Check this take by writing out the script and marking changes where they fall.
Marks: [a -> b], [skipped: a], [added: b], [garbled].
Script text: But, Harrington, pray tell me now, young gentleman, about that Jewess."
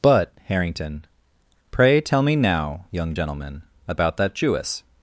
But, Harrington, pray tell me now, young gentleman, about that Jewess."